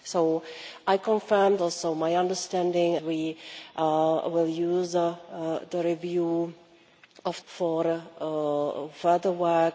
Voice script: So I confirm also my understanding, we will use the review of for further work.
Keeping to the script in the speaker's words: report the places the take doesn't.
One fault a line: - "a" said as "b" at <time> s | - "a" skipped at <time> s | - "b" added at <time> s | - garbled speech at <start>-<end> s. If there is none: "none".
none